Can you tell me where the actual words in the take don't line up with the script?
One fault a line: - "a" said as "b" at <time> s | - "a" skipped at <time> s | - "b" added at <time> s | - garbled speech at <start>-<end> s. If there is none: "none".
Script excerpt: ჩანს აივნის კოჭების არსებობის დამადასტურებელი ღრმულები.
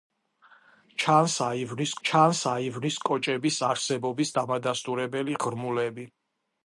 - "ჩანს აივნის" added at 2.1 s